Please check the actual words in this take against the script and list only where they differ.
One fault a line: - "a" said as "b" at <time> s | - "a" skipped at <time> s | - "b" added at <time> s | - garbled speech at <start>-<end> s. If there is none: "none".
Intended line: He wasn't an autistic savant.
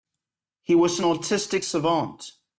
- "wasn't" said as "was" at 0.8 s